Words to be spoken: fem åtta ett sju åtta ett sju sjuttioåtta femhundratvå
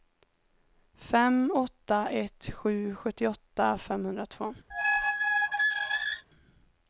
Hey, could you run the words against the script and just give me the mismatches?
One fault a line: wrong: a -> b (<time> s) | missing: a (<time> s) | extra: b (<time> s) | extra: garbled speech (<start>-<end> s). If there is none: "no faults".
missing: åtta ett sju (2.9 s)